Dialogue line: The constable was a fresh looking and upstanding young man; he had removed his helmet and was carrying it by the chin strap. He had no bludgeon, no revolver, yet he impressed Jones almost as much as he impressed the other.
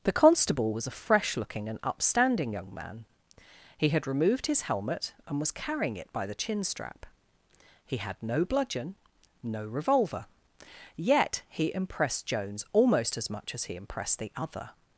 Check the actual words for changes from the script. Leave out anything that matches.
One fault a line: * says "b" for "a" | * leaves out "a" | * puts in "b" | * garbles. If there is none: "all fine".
all fine